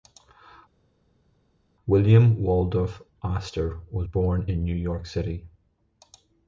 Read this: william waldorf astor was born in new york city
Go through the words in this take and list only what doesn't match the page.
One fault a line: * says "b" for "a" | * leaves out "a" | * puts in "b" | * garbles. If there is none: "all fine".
all fine